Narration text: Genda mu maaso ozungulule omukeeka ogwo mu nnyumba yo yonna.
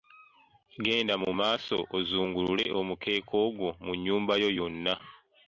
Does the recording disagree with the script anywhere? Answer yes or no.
no